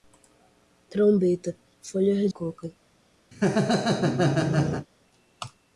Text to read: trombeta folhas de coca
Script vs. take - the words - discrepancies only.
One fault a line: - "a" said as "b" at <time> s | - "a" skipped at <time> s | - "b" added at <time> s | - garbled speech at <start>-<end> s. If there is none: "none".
- "de" skipped at 2.3 s